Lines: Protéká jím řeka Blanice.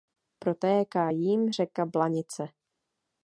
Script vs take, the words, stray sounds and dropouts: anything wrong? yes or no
no